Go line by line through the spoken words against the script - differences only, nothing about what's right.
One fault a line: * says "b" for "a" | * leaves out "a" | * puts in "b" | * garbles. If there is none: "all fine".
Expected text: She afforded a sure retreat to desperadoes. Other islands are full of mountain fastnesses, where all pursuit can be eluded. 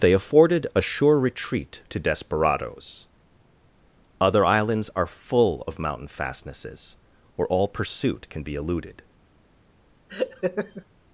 * says "They" for "She"